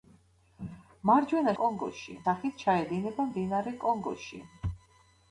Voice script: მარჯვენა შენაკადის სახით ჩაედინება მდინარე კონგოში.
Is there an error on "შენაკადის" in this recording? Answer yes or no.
yes